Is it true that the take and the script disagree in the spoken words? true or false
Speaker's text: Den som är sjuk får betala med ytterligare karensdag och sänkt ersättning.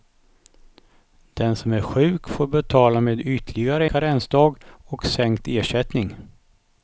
false